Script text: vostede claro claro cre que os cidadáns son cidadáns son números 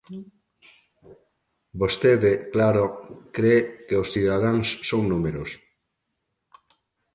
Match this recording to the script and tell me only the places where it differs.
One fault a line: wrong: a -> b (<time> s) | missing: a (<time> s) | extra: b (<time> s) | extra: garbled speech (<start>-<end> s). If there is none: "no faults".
missing: claro (2.8 s)
missing: cidadáns son (5.0 s)